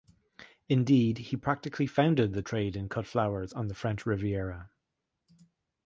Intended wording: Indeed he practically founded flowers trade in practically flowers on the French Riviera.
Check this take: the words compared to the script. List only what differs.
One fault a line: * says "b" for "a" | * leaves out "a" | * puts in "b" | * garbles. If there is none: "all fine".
* says "the" for "flowers"
* says "cut" for "practically"